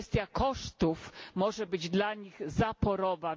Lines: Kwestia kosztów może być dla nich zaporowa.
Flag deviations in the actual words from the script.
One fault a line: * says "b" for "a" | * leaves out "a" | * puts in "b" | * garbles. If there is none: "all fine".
all fine